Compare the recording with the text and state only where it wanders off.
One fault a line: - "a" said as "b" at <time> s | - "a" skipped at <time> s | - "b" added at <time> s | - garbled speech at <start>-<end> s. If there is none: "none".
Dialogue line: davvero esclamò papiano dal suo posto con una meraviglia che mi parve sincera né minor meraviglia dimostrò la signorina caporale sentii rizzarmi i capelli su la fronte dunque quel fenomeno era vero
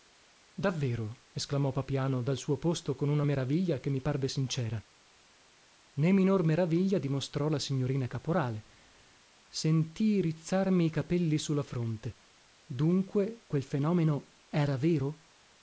none